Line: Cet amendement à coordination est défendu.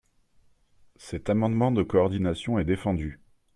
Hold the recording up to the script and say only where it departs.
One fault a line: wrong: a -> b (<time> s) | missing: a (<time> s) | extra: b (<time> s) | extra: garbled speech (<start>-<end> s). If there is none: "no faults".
wrong: à -> de (1.7 s)